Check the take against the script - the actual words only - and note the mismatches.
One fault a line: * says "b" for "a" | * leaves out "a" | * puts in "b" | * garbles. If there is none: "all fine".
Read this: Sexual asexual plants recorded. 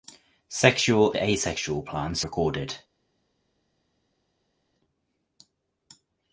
all fine